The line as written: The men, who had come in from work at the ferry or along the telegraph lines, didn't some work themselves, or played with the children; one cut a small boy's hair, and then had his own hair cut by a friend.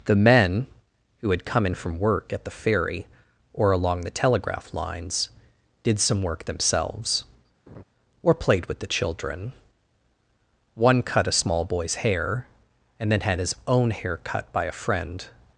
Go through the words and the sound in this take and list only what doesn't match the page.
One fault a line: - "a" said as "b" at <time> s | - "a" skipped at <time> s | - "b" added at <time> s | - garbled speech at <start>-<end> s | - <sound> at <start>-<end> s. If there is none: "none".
- "didn't" said as "did" at 5.8 s
- laugh at 7.7-7.8 s